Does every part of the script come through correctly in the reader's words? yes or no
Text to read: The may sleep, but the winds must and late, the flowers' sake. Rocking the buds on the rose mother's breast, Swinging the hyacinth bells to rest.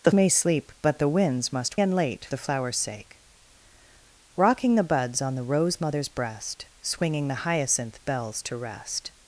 yes